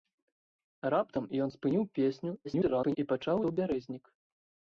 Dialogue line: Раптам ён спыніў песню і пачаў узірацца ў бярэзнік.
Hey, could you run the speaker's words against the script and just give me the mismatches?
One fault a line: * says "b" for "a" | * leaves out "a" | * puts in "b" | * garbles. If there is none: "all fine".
* garbles
* leaves out "узірацца"